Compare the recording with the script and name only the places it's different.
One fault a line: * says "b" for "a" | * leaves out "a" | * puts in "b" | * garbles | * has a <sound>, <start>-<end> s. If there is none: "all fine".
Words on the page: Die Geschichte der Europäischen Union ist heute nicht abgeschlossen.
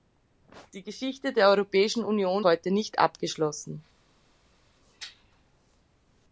* leaves out "ist"